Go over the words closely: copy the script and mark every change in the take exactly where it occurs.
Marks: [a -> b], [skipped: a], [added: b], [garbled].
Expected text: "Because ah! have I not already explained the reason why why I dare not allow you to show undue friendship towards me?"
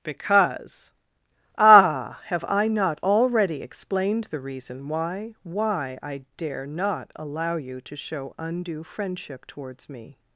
"Because ah! have I not already explained the reason why why I dare not allow you to show undue friendship towards me?"